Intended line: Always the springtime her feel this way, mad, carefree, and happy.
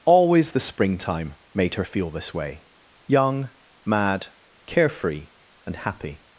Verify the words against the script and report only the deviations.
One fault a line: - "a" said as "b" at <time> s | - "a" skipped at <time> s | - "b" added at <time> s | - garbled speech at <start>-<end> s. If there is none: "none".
- "made" added at 1.5 s
- "young" added at 3.1 s